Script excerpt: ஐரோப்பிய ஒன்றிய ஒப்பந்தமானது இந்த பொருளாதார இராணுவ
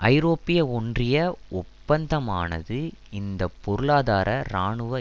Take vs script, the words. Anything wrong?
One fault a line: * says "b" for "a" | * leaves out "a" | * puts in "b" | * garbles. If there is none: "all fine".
all fine